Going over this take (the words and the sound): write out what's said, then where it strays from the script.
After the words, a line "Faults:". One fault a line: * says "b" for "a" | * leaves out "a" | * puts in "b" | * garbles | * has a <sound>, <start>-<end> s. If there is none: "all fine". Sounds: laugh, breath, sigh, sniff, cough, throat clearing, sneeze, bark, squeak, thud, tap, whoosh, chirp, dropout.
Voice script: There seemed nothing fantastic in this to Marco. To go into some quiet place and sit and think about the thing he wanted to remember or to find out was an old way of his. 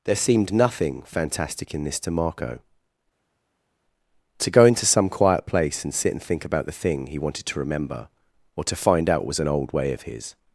There seemed nothing fantastic in this to Marco. To go into some quiet place and sit and think about the thing he wanted to remember or to find out was an old way of his.
Faults:
all fine